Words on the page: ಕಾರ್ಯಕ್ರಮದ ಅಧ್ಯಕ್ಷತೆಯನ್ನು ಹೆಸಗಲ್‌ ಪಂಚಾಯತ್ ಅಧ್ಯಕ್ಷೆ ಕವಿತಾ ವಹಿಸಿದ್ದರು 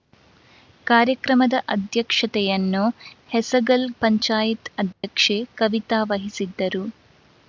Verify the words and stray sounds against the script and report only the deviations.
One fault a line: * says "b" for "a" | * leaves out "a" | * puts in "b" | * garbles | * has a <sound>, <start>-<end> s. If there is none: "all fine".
* has a dropout, 4.9-5.0 s